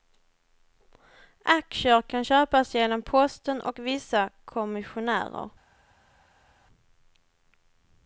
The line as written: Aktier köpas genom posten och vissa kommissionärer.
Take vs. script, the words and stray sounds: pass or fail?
fail